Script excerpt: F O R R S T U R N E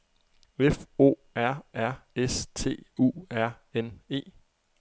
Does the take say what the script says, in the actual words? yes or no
yes